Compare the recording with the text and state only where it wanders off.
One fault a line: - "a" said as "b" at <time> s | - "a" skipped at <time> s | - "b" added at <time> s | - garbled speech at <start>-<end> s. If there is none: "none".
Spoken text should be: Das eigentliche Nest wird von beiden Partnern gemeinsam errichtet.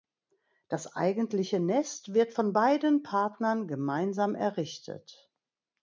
none